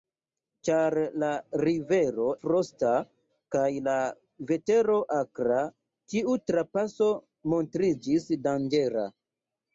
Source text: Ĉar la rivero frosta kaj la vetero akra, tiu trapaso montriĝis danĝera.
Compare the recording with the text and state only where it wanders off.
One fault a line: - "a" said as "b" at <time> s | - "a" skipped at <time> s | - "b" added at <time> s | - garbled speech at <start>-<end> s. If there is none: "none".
none